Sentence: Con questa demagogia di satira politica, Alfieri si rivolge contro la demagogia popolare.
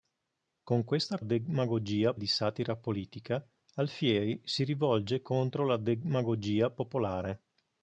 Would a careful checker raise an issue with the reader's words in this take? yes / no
no